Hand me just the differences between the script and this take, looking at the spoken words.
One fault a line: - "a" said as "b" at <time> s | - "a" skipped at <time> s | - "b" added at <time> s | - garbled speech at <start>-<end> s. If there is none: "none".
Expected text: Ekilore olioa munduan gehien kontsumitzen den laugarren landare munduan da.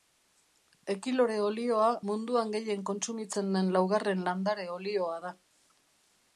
- "munduan" said as "olioa" at 4.8 s